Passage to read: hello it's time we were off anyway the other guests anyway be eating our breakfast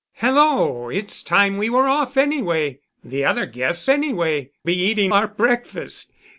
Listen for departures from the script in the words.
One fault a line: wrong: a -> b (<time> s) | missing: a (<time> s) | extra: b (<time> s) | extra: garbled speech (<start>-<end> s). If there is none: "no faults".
no faults